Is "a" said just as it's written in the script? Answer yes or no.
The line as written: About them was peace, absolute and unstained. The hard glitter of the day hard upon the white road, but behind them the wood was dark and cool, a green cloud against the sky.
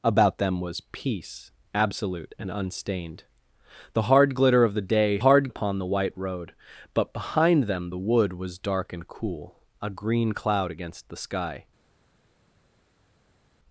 yes